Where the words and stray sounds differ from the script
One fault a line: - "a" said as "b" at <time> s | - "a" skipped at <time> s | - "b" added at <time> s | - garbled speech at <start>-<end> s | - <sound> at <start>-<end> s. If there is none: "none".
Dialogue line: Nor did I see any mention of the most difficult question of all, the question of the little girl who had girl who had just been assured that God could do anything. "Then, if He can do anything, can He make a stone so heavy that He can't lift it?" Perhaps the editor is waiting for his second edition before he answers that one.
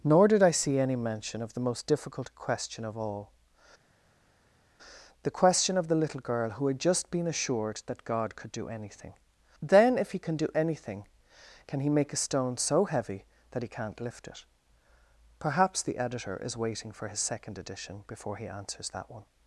- "girl who had" skipped at 6.8 s